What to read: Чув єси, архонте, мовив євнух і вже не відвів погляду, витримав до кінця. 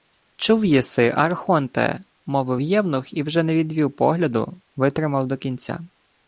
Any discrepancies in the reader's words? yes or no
no